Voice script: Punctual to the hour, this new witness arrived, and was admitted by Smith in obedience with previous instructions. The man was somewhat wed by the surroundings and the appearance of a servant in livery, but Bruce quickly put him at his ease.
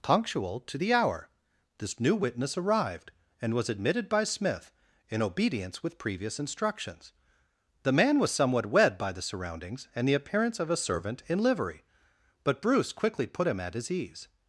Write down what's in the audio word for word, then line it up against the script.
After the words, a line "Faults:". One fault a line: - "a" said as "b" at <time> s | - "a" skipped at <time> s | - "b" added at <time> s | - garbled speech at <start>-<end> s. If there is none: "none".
Punctual to the hour, this new witness arrived, and was admitted by Smith in obedience with previous instructions. The man was somewhat wed by the surroundings and the appearance of a servant in livery, but Bruce quickly put him at his ease.
Faults:
none